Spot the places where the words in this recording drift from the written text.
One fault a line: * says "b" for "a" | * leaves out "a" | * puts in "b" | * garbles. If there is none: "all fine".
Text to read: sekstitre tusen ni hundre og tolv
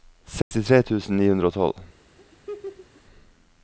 all fine